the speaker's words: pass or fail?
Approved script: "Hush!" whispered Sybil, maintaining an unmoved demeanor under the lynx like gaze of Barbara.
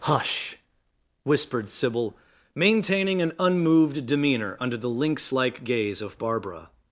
pass